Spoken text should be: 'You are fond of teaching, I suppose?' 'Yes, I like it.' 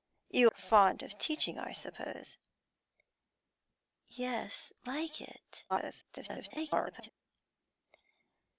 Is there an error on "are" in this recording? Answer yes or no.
yes